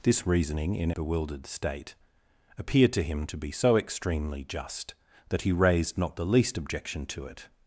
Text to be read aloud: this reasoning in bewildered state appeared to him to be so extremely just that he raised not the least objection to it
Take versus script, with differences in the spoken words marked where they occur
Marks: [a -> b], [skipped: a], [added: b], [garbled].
this reasoning in bewildered state appeared to him to be so extremely just that he raised not the least objection to it